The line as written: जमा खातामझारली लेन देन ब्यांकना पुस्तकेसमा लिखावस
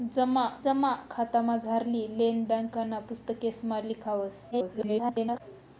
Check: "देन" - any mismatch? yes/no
yes